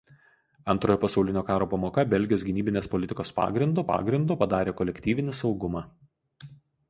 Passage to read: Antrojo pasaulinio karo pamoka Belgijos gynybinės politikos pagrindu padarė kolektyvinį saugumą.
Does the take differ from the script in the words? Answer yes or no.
yes